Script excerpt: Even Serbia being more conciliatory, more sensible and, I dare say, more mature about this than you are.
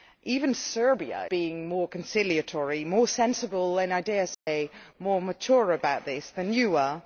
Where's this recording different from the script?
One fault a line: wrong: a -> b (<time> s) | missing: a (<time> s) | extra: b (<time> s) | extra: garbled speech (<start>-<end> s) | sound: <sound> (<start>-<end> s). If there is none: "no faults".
sound: dropout (4.3-4.5 s)